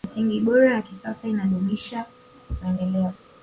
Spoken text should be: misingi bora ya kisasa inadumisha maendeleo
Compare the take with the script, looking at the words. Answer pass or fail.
pass